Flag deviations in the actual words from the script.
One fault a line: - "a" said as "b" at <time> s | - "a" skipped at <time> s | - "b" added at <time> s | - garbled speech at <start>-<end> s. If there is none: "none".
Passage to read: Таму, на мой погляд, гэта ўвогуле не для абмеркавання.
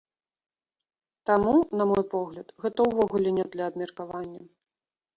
none